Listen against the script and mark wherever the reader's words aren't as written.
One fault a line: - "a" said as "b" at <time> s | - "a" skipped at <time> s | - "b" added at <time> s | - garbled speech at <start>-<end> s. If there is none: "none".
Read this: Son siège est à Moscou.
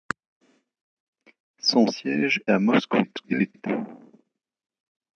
- "est" skipped at 2.4 s
- garbled speech at 3.0-3.7 s